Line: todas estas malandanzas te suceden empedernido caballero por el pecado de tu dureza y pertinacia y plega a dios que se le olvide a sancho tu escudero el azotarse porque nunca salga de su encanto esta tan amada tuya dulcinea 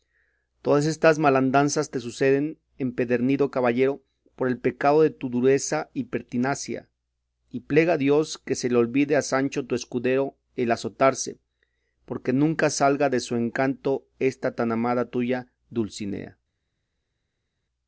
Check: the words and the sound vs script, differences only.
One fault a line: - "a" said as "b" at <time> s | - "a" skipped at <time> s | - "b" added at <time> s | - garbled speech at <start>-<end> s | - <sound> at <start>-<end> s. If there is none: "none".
none